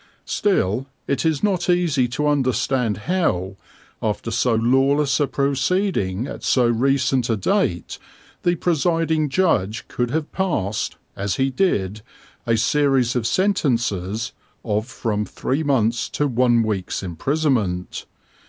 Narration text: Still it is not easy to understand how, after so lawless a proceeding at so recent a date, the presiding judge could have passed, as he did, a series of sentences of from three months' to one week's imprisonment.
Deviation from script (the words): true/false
false